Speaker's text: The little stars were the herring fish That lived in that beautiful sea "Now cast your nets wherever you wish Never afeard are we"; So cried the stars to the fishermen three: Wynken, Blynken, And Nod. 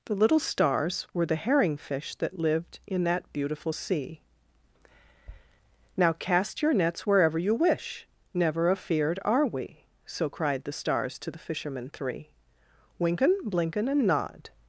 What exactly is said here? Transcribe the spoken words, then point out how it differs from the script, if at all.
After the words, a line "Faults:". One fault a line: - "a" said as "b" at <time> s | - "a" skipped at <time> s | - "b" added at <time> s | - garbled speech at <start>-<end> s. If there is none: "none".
The little stars were the herring fish That lived in that beautiful sea "Now cast your nets wherever you wish Never afeard are we"; So cried the stars to the fishermen three: Wynken, Blynken, And Nod.
Faults:
none